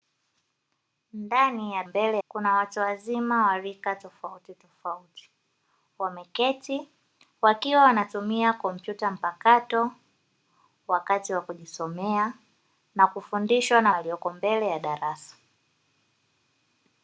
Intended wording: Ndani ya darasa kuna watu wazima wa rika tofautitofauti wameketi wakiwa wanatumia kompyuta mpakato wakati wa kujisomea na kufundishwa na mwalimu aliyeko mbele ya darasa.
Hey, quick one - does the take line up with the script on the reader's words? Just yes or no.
no